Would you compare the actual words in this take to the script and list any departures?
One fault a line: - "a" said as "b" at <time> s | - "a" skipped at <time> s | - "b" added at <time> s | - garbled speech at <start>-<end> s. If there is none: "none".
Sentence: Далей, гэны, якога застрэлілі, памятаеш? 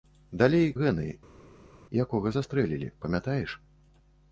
none